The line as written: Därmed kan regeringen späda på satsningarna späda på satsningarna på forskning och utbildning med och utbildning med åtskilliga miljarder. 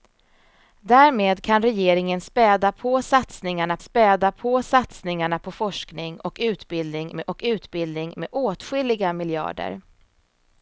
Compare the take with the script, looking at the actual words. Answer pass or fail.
pass